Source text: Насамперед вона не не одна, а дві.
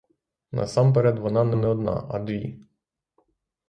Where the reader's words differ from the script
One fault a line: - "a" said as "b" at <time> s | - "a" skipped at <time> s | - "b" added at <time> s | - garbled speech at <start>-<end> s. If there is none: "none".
none